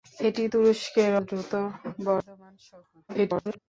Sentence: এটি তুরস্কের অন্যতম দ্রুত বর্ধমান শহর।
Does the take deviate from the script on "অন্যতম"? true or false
true